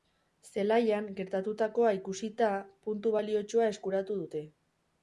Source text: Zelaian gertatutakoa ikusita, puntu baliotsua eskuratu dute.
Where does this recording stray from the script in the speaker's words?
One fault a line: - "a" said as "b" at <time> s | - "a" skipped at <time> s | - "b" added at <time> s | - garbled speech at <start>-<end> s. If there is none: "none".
none